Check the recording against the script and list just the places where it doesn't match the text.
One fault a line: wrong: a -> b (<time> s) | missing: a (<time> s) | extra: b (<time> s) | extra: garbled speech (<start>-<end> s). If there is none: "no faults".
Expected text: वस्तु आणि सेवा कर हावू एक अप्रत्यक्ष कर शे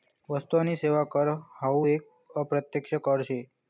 no faults